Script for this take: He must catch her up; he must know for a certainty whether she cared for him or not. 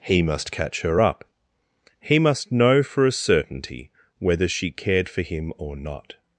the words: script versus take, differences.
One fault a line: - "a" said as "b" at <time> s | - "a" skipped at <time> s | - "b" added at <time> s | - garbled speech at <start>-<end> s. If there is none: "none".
none